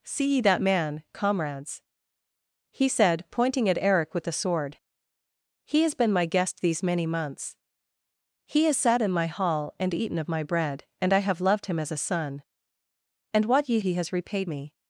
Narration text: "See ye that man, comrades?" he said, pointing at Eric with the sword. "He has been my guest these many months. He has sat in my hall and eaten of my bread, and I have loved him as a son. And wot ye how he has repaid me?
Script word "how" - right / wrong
wrong